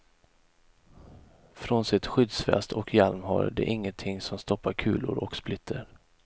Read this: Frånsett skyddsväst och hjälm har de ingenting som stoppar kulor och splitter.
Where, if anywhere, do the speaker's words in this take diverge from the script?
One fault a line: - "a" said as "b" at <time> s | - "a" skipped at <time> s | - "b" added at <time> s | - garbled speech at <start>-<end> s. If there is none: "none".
none